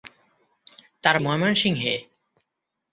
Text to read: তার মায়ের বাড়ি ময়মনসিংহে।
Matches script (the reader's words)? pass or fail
fail